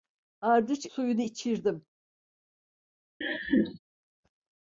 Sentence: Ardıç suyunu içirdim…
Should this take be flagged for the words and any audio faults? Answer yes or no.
yes